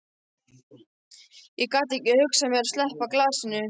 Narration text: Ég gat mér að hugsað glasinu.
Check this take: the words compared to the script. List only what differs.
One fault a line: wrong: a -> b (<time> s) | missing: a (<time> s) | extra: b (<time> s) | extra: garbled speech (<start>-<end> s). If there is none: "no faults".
extra: ekki hugsað (2.0 s)
wrong: hugsað -> sleppa (2.8 s)